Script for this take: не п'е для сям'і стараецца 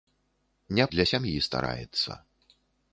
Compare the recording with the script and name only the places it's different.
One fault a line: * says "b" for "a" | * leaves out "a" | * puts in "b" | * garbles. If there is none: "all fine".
* leaves out "п'е"